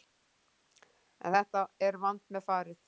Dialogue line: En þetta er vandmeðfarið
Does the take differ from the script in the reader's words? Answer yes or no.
no